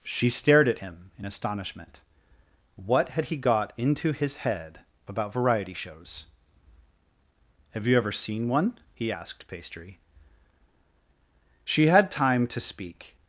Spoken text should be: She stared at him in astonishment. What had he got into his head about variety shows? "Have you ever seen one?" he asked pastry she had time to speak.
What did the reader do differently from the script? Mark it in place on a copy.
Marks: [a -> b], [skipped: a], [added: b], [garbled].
She stared at him in astonishment. What had he got into his head about variety shows? "Have you ever seen one?" he asked pastry she had time to speak.